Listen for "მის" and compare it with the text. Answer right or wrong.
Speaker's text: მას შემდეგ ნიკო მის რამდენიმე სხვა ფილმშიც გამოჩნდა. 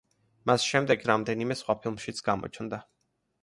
wrong